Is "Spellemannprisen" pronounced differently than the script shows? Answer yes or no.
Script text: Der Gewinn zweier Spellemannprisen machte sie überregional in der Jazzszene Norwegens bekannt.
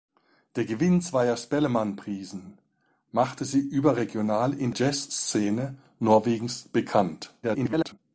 no